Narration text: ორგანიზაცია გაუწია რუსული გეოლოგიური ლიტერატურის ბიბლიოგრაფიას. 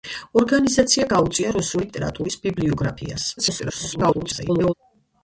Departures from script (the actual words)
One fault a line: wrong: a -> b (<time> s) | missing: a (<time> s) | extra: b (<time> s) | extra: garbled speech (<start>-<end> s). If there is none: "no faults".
missing: გეოლოგიური (1.9 s)
extra: garbled speech (3.4-4.7 s)